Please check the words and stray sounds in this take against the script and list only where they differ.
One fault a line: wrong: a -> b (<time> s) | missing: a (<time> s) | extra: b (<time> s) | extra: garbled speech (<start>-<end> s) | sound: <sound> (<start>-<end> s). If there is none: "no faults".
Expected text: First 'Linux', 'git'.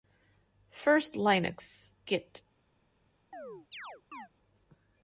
sound: chirp (3.3-4.3 s)